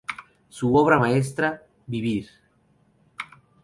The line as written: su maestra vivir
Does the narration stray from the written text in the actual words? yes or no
yes